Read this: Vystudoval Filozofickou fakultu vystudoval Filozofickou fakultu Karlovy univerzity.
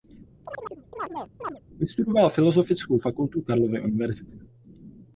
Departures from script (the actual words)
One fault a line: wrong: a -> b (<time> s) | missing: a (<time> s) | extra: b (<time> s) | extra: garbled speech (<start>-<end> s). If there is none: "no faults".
missing: vystudoval Filozofickou fakultu (3.4 s)